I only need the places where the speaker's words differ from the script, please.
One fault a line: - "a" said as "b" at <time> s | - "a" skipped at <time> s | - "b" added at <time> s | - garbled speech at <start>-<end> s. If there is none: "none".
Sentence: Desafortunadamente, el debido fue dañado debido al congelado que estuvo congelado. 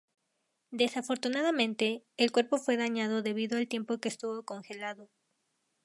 - "debido" said as "cuerpo" at 2.3 s
- "congelado" said as "tiempo" at 3.7 s